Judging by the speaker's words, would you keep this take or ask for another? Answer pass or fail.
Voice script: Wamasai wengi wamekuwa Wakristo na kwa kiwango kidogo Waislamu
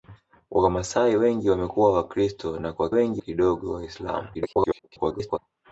fail